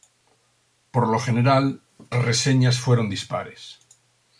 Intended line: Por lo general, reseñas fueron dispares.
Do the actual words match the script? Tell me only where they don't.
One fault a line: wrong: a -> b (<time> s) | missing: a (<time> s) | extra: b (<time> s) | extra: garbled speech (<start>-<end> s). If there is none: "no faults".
no faults